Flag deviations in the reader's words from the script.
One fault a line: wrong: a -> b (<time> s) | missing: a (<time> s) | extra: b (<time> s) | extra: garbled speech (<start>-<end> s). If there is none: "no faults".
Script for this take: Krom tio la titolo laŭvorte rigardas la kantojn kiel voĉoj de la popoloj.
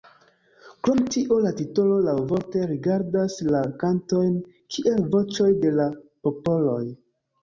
no faults